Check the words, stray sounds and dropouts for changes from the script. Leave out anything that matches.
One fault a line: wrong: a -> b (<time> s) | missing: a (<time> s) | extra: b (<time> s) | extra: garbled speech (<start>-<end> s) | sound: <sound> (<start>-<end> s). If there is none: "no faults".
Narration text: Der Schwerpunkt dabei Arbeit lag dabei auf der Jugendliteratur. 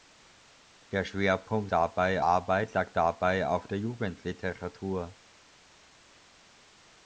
no faults